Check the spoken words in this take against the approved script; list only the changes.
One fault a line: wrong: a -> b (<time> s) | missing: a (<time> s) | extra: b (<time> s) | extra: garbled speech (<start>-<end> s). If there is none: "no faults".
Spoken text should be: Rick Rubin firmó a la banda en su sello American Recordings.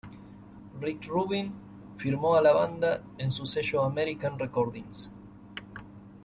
no faults